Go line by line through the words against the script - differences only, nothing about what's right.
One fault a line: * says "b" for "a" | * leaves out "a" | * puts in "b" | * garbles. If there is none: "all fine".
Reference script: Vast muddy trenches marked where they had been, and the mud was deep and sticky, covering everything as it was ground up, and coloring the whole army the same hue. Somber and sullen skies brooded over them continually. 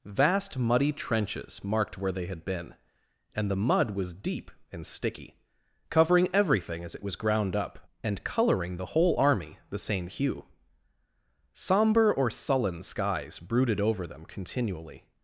* says "or" for "and"